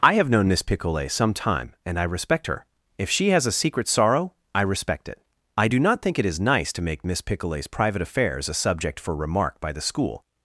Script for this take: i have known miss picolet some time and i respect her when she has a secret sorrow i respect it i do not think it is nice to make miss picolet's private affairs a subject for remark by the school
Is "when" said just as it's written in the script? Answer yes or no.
no